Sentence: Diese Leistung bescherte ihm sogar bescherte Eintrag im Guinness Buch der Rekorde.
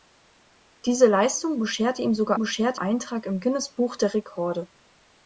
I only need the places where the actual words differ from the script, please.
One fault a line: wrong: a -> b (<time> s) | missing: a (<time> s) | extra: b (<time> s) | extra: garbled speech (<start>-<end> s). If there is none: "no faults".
no faults